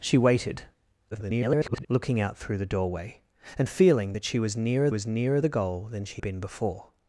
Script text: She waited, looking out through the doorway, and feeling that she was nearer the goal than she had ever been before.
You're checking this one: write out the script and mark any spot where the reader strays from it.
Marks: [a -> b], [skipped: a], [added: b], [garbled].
She waited, [garbled] looking out through the doorway, and feeling that she was nearer [added: was nearer] the goal than she [skipped: had ever] been before.